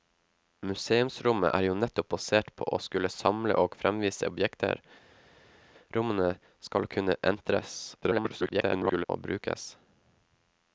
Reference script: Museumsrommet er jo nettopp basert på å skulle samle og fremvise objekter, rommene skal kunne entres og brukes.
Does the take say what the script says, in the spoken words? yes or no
no